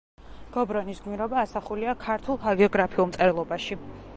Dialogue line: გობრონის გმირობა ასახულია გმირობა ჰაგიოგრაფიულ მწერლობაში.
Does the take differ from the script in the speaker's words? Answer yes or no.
yes